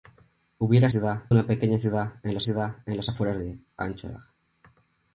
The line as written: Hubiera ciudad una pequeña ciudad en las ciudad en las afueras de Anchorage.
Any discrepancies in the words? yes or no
no